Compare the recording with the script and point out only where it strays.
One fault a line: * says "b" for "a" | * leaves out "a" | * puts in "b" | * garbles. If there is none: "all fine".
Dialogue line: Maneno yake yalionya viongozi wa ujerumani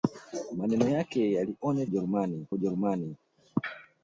* says "ujerumani" for "viongozi"